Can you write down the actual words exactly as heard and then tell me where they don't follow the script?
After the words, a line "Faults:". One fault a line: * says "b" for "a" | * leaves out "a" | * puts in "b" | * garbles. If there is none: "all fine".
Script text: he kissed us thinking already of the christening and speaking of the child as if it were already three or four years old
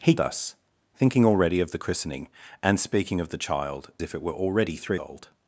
he us thinking already of the christening and speaking of the child if it were already three old
Faults:
* leaves out "kissed"
* leaves out "as"
* leaves out "or four years"